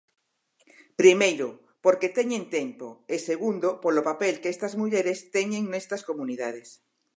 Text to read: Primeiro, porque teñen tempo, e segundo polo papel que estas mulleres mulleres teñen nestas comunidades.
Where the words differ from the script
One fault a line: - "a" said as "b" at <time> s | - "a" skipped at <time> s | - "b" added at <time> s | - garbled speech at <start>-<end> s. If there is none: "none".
- "mulleres" skipped at 5.2 s